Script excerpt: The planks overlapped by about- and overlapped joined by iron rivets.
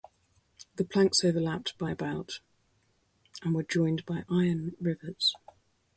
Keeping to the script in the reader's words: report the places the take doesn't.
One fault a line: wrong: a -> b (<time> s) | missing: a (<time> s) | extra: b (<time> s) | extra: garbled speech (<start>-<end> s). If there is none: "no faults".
wrong: overlapped -> were (3.5 s)